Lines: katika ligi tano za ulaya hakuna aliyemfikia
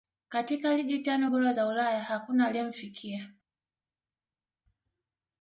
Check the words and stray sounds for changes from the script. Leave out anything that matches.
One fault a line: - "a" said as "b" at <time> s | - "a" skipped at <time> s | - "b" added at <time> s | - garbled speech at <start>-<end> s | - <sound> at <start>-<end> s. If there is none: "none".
- "bora" added at 1.3 s